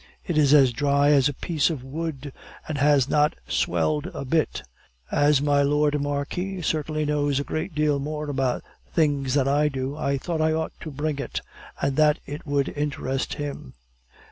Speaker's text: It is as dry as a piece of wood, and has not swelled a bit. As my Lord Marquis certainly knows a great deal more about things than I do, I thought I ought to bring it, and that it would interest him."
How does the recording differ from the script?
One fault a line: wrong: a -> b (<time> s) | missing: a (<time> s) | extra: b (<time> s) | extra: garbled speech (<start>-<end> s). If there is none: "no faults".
no faults